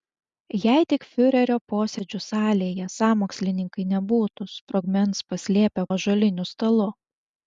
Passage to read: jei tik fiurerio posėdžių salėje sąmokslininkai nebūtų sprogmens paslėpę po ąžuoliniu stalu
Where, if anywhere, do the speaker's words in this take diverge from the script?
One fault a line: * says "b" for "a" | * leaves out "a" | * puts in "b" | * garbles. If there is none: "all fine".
* leaves out "po"